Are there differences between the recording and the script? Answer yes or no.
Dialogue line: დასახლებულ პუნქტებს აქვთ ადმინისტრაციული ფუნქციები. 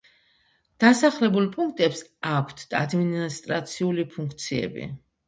no